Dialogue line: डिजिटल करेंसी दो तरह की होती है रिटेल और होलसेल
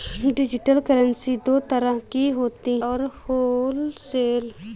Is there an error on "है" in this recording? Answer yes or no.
yes